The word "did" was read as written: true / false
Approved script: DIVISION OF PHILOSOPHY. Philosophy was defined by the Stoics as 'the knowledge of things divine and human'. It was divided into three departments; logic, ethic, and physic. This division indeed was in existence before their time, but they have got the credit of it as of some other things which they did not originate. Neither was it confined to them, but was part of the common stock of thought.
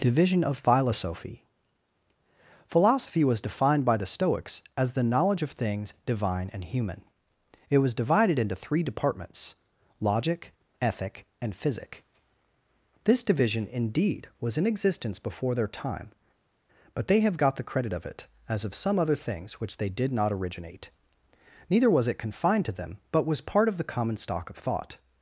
true